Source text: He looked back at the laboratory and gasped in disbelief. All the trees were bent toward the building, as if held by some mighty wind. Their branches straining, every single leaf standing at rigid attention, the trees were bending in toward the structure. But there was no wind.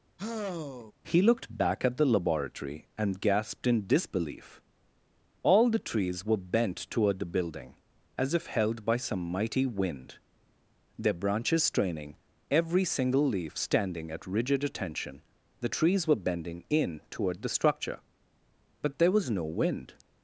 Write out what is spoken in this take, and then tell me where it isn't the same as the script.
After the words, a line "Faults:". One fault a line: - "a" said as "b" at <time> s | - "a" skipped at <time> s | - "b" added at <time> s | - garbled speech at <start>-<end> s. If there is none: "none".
He looked back at the laboratory and gasped in disbelief. All the trees were bent toward the building, as if held by some mighty wind. Their branches straining, every single leaf standing at rigid attention, the trees were bending in toward the structure. But there was no wind.
Faults:
none